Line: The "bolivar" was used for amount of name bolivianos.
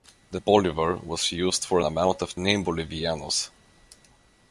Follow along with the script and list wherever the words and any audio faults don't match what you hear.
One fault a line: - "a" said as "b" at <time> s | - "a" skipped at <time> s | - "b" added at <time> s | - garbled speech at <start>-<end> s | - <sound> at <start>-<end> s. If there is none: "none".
none